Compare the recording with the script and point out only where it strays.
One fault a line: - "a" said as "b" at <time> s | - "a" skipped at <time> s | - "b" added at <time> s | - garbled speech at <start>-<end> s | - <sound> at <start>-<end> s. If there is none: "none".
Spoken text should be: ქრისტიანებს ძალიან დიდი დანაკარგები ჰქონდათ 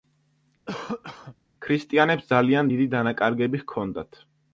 - cough at 0.7-1.4 s